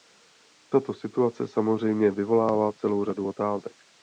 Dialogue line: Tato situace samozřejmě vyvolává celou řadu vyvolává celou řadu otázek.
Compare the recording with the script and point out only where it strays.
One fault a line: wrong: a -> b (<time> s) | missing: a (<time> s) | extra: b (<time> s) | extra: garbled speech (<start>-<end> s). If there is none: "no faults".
missing: vyvolává celou řadu (3.3 s)